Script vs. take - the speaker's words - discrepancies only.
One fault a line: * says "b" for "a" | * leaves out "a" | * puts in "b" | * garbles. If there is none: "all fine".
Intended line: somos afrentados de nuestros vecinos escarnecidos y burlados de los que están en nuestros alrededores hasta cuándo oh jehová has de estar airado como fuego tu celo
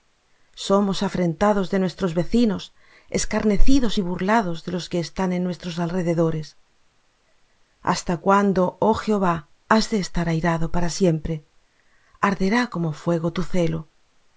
* puts in "para siempre arderá"